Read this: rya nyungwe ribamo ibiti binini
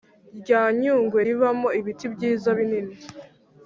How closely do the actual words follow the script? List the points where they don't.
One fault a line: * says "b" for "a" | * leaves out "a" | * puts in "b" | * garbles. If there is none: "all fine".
* puts in "byiza"